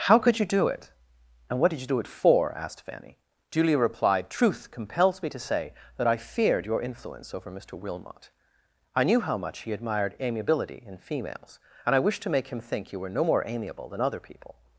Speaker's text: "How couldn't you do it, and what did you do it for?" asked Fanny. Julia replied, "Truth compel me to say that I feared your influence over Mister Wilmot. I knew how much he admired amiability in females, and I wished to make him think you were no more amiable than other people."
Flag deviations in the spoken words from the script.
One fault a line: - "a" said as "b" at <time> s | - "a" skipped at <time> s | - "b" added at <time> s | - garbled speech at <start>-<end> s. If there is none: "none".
- "couldn't" said as "could" at 0.2 s
- "compel" said as "compels" at 4.7 s